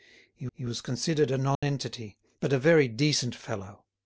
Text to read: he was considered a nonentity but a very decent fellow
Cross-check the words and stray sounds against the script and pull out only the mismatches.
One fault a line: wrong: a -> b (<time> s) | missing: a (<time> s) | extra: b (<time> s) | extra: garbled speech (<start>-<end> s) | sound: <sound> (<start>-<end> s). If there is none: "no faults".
extra: he (0.5 s)
sound: dropout (1.5-1.6 s)